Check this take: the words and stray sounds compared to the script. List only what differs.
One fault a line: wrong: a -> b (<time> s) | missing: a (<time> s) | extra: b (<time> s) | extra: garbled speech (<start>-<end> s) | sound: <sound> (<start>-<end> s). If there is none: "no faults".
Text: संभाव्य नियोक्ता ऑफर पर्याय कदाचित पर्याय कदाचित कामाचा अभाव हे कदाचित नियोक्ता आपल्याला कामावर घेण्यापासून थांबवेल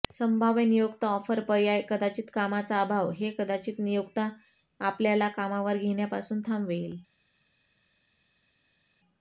missing: पर्याय कदाचित (2.3 s)